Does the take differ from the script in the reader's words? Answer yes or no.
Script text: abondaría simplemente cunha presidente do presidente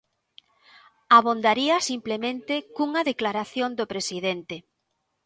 yes